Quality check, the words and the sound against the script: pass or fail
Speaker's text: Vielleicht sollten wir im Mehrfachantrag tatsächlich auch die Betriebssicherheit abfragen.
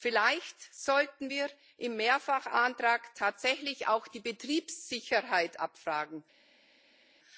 pass